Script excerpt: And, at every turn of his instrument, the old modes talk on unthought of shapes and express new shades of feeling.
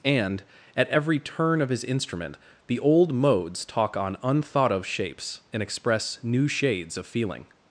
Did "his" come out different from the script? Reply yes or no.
no